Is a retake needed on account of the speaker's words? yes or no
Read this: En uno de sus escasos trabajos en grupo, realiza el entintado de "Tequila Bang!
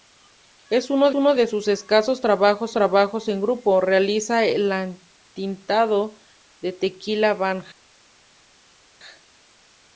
yes